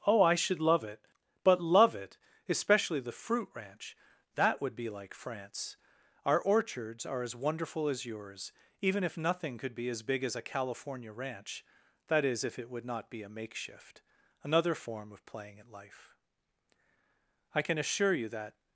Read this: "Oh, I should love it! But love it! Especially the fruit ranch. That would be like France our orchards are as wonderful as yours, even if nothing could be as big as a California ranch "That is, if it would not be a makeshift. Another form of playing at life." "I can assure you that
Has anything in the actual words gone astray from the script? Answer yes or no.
no